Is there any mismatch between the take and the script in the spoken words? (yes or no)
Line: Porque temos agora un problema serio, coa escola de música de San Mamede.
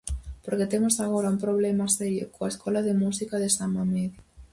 no